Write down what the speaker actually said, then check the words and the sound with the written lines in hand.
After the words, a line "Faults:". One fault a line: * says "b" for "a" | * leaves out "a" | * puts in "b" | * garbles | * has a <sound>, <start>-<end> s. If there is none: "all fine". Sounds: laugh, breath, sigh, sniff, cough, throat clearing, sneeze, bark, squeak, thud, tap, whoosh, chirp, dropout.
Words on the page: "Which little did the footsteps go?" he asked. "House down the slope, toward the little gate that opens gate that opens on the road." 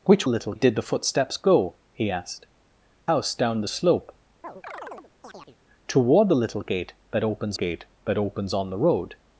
"Which little did the footsteps go?" he asked. "House down the slope, toward the little gate that opens gate that opens on the road."
Faults:
* has a chirp, 4.4-5.6 s